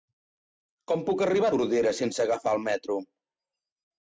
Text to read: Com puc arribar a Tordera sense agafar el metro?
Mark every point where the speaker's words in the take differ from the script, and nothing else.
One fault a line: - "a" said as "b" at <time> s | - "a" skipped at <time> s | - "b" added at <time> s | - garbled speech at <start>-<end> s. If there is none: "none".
none